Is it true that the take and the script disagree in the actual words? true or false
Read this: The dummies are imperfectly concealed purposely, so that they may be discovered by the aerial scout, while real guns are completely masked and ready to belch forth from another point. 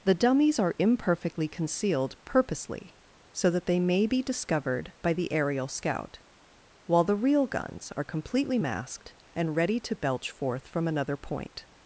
true